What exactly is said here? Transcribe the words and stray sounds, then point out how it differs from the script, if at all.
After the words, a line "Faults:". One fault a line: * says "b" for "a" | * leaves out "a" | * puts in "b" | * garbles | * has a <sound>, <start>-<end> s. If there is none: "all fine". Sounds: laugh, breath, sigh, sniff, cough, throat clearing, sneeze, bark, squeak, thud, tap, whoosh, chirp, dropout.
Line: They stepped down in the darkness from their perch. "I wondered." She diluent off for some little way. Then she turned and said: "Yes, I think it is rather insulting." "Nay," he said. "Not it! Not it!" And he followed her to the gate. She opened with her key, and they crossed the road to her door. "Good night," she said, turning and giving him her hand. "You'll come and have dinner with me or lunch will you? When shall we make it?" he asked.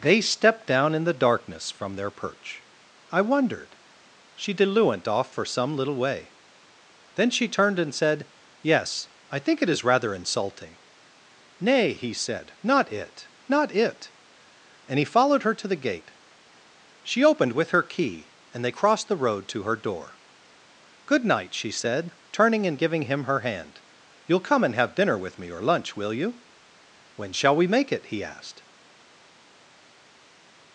They stepped down in the darkness from their perch. "I wondered." She diluent off for some little way. Then she turned and said: "Yes, I think it is rather insulting." "Nay," he said. "Not it! Not it!" And he followed her to the gate. She opened with her key, and they crossed the road to her door. "Good night," she said, turning and giving him her hand. "You'll come and have dinner with me or lunch will you? When shall we make it?" he asked.
Faults:
all fine